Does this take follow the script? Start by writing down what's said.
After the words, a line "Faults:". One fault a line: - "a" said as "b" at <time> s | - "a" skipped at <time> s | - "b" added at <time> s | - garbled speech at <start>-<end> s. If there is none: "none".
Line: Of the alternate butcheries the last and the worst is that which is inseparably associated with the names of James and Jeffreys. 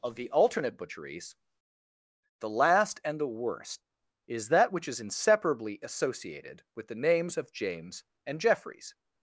Of the alternate butcheries the last and the worst is that which is inseparably associated with the names of James and Jeffreys.
Faults:
none